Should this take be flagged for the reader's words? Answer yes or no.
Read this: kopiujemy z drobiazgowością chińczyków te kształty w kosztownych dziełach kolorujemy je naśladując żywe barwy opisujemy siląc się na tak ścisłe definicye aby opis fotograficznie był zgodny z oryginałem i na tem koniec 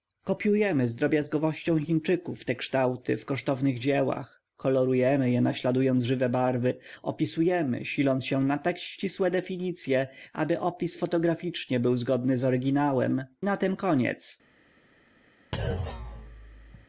yes